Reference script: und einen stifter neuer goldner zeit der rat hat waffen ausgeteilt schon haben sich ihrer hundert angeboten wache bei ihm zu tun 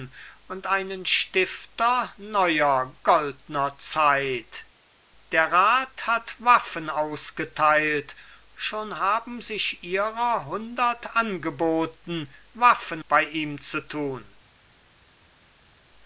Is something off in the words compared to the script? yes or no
yes